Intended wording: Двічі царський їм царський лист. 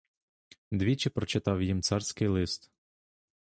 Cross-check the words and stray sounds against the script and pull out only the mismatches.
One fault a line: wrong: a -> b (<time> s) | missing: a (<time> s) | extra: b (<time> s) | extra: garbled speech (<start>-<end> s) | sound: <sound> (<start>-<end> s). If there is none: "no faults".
wrong: царський -> прочитав (1.1 s)